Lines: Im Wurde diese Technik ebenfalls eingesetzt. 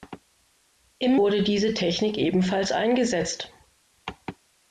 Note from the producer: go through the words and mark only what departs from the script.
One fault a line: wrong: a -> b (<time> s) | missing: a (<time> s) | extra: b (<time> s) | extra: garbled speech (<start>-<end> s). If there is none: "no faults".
no faults